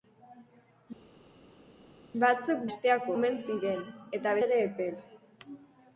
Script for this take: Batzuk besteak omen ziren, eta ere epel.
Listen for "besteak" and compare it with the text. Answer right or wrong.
right